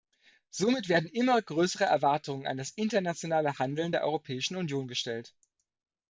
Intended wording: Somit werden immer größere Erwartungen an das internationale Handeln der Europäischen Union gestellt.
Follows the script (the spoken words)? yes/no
yes